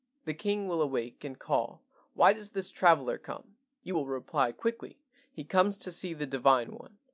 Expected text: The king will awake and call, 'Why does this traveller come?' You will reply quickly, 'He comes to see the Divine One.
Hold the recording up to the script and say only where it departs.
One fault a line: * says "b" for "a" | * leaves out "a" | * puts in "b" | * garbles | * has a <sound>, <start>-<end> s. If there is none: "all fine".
all fine